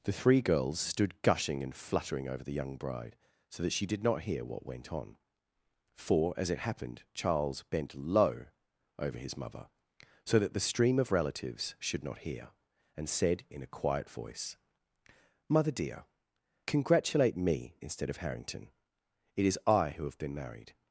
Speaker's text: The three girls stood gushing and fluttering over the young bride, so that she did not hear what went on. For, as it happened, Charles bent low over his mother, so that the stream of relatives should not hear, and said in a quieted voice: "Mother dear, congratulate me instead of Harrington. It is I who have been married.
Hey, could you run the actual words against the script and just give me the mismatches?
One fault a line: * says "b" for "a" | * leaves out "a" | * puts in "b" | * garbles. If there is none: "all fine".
* says "quiet" for "quieted"